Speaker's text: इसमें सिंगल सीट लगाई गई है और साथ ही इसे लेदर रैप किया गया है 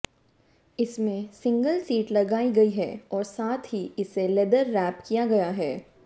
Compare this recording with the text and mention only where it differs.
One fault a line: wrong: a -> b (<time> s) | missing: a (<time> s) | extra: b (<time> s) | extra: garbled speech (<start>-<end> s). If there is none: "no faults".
no faults